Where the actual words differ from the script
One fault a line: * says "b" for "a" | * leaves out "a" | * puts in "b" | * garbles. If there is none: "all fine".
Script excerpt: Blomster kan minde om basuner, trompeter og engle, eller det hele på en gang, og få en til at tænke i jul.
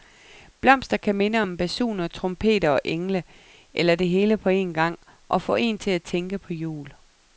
* says "på" for "i"